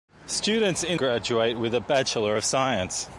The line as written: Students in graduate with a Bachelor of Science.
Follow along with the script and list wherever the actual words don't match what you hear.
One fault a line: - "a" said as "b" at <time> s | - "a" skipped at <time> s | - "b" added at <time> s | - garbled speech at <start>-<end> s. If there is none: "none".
none